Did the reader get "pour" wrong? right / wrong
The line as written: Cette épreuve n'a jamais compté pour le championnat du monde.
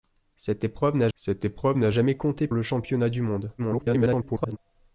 wrong